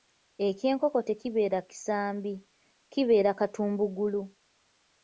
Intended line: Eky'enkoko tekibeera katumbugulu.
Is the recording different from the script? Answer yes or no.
yes